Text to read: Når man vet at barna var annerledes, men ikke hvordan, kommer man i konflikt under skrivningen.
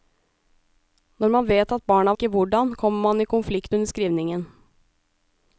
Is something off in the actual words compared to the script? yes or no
yes